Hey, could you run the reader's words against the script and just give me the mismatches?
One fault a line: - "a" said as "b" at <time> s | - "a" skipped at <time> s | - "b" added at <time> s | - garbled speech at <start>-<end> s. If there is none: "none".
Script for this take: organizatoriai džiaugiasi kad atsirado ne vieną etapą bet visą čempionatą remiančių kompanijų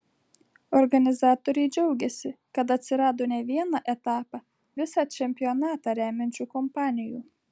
- "bet" skipped at 4.4 s